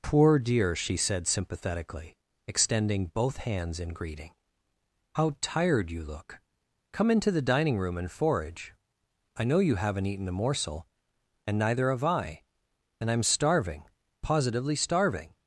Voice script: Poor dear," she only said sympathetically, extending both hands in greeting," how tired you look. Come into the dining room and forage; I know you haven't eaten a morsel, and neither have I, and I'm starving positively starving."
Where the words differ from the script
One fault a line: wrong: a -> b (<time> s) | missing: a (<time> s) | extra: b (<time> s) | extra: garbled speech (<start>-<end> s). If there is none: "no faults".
missing: only (1.0 s)